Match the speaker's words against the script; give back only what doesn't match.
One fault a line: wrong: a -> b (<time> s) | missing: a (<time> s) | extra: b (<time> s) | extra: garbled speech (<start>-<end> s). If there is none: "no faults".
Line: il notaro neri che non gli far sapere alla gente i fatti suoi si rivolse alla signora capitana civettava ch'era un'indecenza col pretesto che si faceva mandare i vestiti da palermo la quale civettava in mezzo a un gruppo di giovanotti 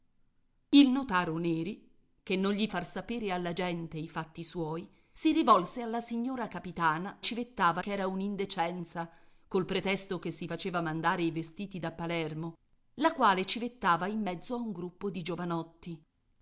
no faults